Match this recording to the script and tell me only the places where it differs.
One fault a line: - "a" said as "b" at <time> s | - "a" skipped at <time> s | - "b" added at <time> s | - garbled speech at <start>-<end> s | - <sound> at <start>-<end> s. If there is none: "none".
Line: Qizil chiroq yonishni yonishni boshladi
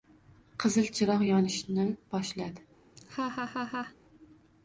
- "yonishni" skipped at 1.9 s
- laugh at 3.0-4.0 s